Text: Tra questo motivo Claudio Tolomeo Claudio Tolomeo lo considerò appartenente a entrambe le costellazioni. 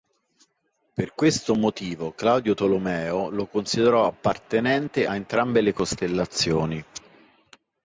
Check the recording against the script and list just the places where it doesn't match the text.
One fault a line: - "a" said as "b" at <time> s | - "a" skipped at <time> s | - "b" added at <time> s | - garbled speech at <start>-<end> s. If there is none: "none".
- "Tra" said as "Per" at 0.9 s
- "Claudio Tolomeo" skipped at 3.3 s